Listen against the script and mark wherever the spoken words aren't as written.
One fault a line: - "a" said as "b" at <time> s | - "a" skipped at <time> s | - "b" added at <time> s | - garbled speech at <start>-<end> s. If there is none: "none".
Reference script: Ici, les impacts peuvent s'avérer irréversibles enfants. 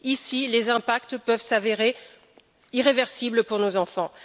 - "pour nos" added at 3.4 s